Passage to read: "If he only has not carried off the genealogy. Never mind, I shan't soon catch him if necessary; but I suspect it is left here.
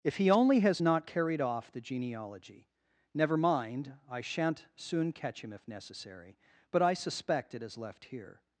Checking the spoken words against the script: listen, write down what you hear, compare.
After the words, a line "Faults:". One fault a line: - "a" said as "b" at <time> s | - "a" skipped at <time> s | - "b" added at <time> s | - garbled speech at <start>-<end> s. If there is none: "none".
"If he only has not carried off the genealogy. Never mind, I shan't soon catch him if necessary; but I suspect it is left here.
Faults:
none